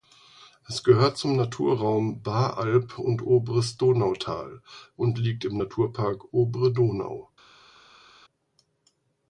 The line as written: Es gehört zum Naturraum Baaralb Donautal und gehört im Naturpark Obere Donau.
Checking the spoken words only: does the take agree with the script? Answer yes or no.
no